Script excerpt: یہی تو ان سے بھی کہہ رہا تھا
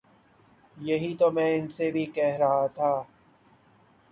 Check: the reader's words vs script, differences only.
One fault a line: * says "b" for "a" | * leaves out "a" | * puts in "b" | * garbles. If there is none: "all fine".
* puts in "میں"